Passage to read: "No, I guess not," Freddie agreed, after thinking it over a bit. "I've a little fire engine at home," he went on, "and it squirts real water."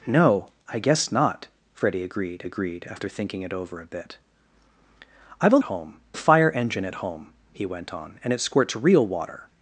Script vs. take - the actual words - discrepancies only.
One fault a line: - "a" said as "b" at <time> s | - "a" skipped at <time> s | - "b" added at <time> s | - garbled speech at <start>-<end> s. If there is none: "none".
- "agreed" added at 2.4 s
- "little" said as "home" at 5.6 s